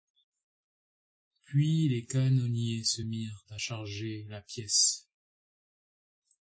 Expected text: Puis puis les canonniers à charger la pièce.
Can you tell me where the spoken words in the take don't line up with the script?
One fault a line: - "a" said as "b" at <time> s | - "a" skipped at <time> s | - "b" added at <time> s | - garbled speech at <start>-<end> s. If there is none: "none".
- "puis" skipped at 1.9 s
- "se mirent" added at 2.8 s